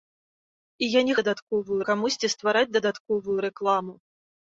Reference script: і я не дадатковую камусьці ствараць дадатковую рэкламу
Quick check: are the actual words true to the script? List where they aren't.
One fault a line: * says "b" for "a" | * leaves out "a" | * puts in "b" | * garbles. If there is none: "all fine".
all fine